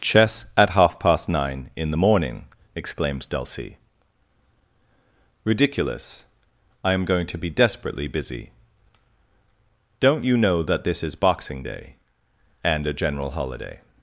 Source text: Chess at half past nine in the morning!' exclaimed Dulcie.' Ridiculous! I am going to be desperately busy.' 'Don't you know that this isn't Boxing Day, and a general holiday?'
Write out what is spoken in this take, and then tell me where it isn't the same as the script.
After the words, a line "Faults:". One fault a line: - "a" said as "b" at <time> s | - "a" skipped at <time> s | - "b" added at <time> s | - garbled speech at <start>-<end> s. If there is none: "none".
Chess at half past nine in the morning!' exclaimed Dulcie.' Ridiculous! I am going to be desperately busy.' 'Don't you know that this is Boxing Day, and a general holiday?'
Faults:
- "isn't" said as "is" at 11.0 s